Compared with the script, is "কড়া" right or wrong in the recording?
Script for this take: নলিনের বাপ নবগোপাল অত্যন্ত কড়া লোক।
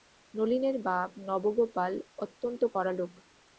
right